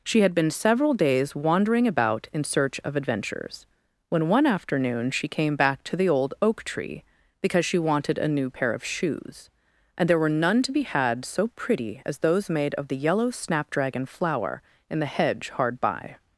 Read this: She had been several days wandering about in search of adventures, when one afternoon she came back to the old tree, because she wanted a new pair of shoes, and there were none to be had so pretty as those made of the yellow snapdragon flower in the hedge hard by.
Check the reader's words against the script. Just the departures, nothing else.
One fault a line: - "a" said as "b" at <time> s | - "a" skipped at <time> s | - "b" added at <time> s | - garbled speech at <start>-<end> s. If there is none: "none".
- "oak" added at 6.4 s